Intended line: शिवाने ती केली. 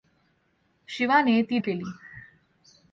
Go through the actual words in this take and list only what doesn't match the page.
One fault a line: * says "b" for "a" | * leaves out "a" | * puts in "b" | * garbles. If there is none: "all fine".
all fine